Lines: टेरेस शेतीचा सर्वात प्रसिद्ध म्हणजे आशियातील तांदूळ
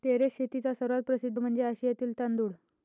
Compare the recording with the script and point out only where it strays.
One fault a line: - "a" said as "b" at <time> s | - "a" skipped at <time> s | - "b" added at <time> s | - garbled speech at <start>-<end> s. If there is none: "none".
none